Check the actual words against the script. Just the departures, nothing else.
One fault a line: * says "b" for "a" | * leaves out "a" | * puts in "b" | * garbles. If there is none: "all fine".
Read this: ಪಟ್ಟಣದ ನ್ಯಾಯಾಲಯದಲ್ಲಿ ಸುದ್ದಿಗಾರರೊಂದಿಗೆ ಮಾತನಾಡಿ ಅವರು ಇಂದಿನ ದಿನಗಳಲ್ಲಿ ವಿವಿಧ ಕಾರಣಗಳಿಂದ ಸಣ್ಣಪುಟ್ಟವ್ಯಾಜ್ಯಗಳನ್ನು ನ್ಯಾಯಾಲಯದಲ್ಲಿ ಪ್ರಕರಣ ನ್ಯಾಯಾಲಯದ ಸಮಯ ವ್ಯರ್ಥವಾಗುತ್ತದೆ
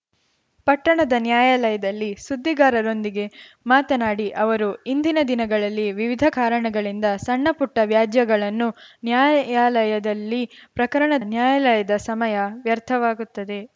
all fine